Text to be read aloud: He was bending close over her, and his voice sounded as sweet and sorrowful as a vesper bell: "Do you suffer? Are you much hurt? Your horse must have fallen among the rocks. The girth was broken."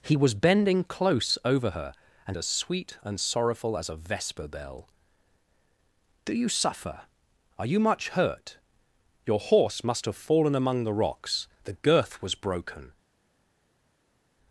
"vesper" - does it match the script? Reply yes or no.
yes